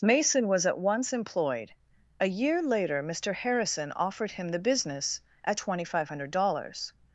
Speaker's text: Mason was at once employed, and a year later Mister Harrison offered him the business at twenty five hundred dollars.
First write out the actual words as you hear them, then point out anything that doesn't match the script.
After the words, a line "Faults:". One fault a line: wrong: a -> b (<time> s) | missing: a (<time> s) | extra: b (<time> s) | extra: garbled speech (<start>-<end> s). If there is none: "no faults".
Mason was at once employed, a year later Mister Harrison offered him the business at twenty five hundred dollars.
Faults:
missing: and (1.7 s)